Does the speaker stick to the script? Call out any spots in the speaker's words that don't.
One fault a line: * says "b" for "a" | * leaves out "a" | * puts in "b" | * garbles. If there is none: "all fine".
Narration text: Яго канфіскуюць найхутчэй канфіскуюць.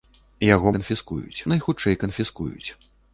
all fine